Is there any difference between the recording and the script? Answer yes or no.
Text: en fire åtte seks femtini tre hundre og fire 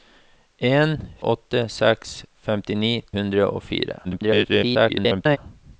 yes